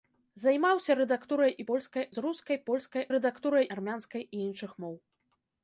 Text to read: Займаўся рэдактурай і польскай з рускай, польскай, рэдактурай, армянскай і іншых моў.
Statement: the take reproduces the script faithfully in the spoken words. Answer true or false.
true